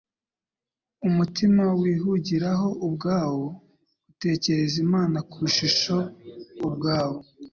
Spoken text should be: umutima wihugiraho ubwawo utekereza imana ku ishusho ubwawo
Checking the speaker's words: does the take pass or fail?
pass